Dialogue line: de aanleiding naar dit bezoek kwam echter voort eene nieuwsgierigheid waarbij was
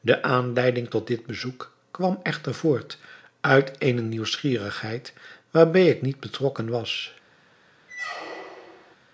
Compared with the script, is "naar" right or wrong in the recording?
wrong